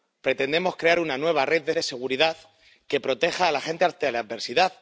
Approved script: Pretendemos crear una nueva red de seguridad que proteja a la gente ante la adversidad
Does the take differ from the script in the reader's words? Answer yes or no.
yes